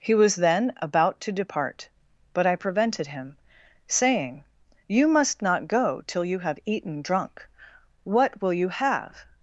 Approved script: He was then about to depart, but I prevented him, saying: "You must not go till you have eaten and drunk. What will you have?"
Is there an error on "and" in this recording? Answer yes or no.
yes